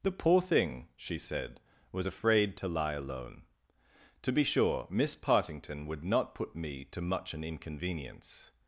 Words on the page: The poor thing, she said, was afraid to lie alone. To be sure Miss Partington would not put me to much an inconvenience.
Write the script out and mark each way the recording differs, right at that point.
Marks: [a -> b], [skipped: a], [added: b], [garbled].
The poor thing, she said, was afraid to lie alone. To be sure Miss Partington would not put me to much an inconvenience.